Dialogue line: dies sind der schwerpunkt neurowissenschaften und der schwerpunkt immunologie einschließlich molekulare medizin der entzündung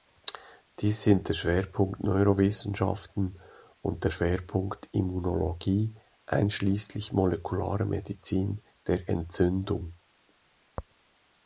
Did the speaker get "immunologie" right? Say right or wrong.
right